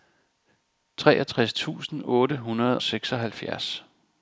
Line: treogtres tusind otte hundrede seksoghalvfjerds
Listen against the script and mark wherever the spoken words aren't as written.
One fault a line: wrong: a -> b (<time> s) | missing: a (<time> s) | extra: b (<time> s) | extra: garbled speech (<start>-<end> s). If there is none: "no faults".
no faults